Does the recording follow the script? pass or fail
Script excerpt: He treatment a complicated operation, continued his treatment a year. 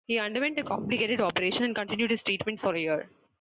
fail